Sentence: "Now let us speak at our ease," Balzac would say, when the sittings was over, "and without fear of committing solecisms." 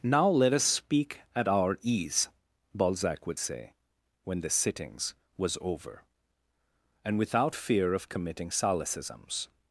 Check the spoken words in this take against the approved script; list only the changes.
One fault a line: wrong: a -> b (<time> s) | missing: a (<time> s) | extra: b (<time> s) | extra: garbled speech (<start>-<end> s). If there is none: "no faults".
no faults